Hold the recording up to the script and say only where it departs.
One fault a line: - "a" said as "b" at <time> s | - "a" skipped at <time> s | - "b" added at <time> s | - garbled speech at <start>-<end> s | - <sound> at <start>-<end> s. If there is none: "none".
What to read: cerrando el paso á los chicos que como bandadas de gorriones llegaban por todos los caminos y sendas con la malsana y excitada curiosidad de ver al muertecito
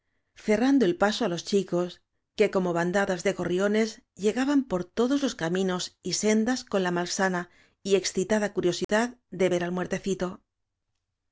- dropout at 8.8-8.9 s